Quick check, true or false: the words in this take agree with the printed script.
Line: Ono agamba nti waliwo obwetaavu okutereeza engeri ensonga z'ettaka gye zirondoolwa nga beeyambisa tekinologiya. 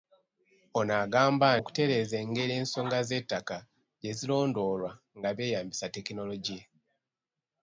false